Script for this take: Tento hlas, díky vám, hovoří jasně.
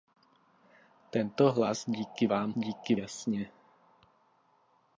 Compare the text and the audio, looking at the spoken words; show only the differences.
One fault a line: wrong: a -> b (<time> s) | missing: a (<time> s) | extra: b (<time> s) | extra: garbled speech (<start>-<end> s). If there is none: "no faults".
wrong: hovoří -> díky (2.6 s)